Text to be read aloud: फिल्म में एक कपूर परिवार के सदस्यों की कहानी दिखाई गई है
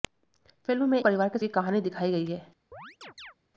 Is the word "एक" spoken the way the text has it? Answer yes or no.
no